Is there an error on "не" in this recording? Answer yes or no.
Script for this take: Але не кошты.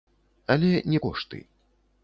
no